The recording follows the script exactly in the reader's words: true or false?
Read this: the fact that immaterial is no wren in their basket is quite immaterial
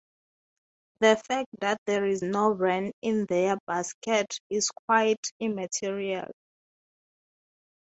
false